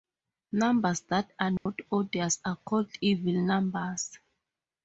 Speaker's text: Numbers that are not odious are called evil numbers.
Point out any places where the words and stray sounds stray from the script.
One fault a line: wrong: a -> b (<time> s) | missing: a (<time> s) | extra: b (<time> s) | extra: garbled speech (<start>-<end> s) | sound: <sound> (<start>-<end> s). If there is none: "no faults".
sound: dropout (1.6-1.7 s)